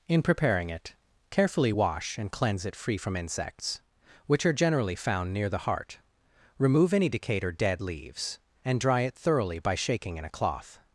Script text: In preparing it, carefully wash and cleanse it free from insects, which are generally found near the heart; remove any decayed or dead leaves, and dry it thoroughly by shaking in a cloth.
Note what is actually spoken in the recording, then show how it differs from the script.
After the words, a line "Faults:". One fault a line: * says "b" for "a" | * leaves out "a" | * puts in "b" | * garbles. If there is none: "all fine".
In preparing it, carefully wash and cleanse it free from insects, which are generally found near the heart; remove any decayed or dead leaves, and dry it thoroughly by shaking in a cloth.
Faults:
all fine